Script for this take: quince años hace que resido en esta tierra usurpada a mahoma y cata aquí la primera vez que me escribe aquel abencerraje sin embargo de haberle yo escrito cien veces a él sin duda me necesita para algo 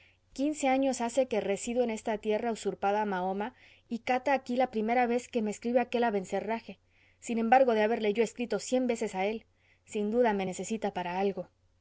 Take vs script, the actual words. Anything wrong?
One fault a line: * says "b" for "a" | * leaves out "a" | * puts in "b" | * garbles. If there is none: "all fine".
all fine